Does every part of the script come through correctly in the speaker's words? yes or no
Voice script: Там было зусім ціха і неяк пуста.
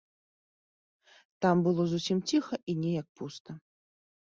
yes